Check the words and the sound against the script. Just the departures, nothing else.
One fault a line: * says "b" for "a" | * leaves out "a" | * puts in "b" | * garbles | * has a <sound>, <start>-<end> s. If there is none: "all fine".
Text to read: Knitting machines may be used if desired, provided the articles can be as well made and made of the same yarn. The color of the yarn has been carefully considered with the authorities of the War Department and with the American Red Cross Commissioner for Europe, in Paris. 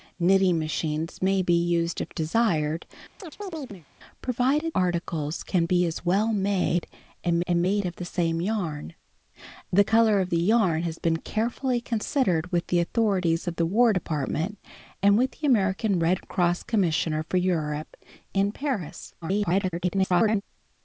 * has a chirp, 3.2-3.9 s
* leaves out "the"
* puts in "and"
* garbles